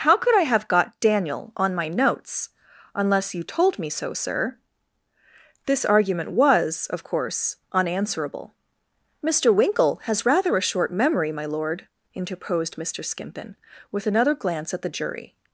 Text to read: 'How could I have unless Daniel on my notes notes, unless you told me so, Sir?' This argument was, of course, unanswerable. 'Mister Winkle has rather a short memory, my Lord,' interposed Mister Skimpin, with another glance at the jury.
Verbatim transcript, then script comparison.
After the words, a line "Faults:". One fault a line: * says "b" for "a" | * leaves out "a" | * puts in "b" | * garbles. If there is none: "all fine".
'How could I have got Daniel on my notes, unless you told me so, Sir?' This argument was, of course, unanswerable. 'Mister Winkle has rather a short memory, my Lord,' interposed Mister Skimpin, with another glance at the jury.
Faults:
* says "got" for "unless"
* leaves out "notes"